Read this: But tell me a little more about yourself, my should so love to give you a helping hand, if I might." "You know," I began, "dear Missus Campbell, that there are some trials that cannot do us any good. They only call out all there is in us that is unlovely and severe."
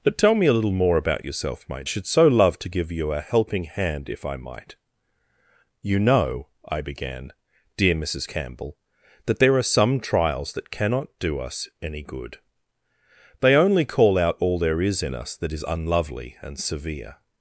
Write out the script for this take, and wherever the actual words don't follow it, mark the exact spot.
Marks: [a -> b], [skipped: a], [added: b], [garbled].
But tell me a little more about yourself, my should so love to give you a helping hand, if I might." "You know," I began, "dear Missus Campbell, that there are some trials that cannot do us any good. They only call out all there is in us that is unlovely and severe."